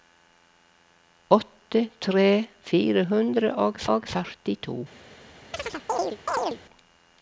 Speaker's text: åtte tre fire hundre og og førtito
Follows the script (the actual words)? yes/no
yes